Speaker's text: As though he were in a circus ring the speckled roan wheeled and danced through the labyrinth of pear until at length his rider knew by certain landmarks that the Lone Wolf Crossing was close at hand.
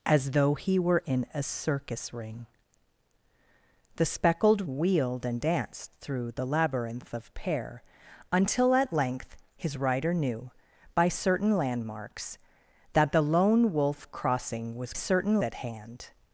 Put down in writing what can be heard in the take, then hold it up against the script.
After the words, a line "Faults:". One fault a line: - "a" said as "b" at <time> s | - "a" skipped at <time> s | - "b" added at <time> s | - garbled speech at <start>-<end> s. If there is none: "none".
As though he were in a circus ring the speckled wheeled and danced through the labyrinth of pear until at length his rider knew by certain landmarks that the Lone Wolf Crossing was certain at hand.
Faults:
- "roan" skipped at 4.7 s
- "close" said as "certain" at 14.9 s